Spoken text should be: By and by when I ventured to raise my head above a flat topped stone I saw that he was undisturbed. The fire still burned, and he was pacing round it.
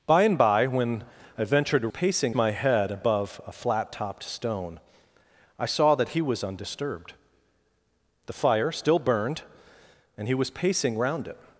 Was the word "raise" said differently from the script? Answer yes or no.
yes